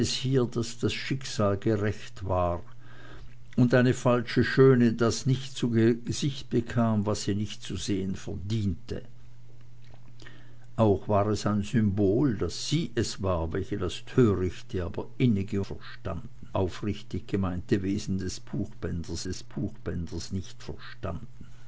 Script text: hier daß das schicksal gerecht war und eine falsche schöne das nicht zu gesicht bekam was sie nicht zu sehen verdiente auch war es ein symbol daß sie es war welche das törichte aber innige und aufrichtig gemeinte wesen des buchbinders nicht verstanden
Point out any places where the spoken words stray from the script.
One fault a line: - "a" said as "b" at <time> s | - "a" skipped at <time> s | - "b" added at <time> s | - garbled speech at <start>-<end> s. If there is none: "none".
- "und" said as "verstanden" at 15.6 s
- "des buchbinders" added at 19.2 s